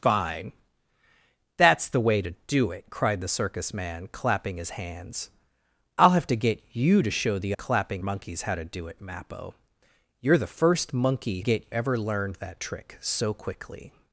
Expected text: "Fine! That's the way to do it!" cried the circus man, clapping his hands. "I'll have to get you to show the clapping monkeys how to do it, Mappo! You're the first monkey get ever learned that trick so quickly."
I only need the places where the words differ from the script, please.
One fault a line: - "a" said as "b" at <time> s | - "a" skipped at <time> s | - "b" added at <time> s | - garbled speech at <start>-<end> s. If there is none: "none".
none